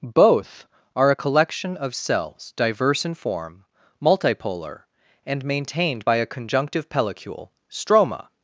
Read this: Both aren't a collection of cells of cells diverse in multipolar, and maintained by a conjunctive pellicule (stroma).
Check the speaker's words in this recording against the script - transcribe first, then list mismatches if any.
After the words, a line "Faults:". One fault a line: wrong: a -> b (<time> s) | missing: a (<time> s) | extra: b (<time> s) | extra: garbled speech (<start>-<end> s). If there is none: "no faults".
Both are a collection of cells diverse in form, multipolar, and maintained by a conjunctive pellicule (stroma).
Faults:
wrong: aren't -> are (0.9 s)
missing: of cells (2.5 s)
extra: form (3.2 s)